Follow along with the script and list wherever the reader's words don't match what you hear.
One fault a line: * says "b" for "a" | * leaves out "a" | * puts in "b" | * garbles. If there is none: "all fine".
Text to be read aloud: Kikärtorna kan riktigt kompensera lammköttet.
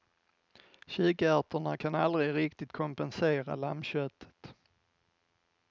* puts in "aldrig"